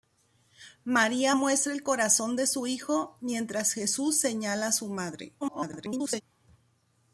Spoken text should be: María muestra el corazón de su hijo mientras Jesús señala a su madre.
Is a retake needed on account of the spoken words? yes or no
yes